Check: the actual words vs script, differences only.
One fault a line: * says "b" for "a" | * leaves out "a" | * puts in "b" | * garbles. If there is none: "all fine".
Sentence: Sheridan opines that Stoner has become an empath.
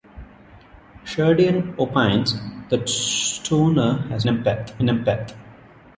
* says "empath" for "become"